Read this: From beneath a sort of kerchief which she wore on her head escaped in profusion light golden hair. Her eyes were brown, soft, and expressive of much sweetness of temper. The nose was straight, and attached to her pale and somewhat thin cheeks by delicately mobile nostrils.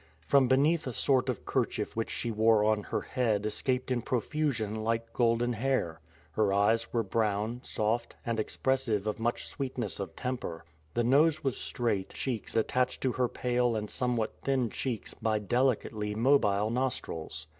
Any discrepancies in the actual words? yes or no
yes